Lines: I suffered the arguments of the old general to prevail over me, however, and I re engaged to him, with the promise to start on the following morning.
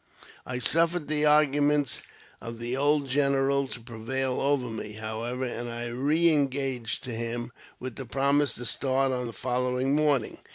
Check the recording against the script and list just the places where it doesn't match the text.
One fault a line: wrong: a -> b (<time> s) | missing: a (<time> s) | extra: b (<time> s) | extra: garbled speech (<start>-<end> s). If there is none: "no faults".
no faults